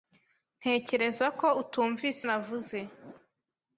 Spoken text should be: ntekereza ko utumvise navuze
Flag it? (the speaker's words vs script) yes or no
no